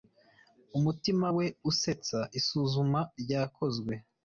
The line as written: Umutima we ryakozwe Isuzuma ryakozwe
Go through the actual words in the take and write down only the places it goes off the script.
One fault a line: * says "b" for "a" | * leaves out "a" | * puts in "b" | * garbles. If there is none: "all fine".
* says "usetsa" for "ryakozwe"